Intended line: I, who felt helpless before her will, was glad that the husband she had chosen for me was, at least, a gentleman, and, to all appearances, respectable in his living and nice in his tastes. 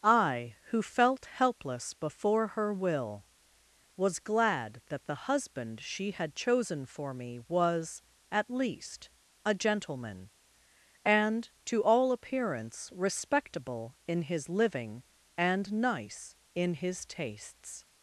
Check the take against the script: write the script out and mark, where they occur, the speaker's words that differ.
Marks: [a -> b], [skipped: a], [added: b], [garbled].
I, who felt helpless before her will, was glad that the husband she had chosen for me was, at least, a gentleman, and, to all [appearances, -> appearance] respectable in his living and nice in his tastes.